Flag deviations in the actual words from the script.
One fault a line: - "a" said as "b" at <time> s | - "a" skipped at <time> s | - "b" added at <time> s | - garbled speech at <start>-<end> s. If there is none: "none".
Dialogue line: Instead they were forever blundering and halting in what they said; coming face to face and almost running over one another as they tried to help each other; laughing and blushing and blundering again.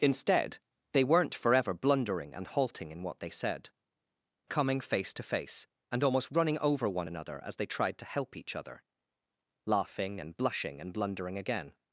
- "were" said as "weren't" at 1.0 s